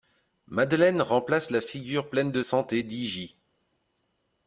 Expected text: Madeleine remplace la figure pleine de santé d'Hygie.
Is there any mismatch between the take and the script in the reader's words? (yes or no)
no